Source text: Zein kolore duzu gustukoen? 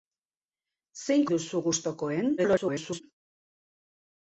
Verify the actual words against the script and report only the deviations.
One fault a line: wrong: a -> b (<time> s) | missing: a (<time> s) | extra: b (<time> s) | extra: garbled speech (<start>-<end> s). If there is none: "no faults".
missing: kolore (1.2 s)
extra: garbled speech (2.4-3.0 s)